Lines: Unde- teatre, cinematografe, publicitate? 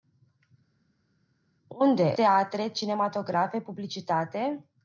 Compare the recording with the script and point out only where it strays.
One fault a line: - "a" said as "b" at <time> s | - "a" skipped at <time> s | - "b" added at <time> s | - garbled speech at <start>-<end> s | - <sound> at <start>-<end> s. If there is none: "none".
none